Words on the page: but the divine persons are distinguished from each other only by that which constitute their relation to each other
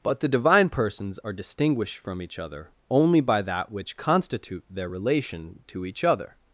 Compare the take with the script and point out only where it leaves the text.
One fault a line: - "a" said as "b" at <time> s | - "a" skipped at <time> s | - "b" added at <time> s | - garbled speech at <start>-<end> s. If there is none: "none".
none